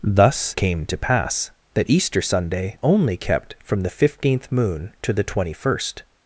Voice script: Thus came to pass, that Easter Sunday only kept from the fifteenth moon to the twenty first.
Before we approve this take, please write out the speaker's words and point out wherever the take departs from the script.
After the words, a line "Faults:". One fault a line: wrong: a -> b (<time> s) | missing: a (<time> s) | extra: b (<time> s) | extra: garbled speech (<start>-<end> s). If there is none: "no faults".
Thus came to pass, that Easter Sunday only kept from the fifteenth moon to the twenty first.
Faults:
no faults